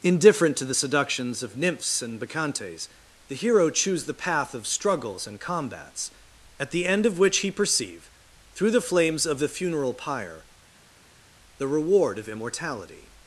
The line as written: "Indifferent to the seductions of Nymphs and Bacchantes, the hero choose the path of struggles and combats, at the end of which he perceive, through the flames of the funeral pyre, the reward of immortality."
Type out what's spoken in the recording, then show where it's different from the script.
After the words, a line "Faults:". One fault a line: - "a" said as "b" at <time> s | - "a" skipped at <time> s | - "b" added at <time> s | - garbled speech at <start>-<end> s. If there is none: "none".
"Indifferent to the seductions of Nymphs and Bacchantes, the hero choose the path of struggles and combats, at the end of which he perceive, through the flames of the funeral pyre, the reward of immortality."
Faults:
none